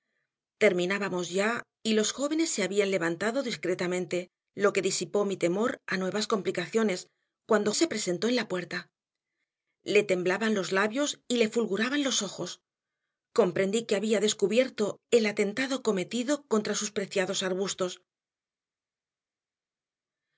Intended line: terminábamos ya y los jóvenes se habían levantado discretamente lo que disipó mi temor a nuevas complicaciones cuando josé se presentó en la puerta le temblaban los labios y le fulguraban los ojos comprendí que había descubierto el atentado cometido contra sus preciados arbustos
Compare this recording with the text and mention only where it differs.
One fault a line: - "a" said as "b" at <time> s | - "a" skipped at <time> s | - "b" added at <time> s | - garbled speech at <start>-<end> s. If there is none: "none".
- "josé" skipped at 7.7 s